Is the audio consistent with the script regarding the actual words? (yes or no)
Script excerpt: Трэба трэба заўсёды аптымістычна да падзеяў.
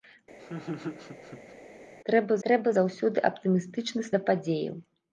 yes